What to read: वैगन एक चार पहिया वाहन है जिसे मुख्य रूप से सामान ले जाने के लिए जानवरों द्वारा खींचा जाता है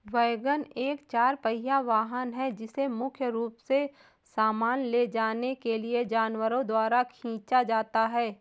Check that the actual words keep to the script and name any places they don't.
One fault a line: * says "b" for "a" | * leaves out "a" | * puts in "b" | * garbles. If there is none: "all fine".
all fine